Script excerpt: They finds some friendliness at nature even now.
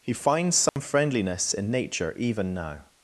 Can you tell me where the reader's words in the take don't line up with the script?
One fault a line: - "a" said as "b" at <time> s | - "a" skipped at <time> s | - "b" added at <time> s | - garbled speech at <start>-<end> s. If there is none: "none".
- "They" said as "He" at 0.0 s
- "at" said as "in" at 1.5 s